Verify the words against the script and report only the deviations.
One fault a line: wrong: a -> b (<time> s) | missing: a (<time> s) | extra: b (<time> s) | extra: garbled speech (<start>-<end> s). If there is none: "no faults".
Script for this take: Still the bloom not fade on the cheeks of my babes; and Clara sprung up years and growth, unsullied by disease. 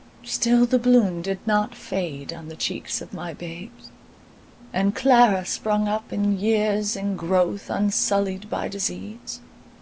extra: did (1.2 s)
extra: in (6.1 s)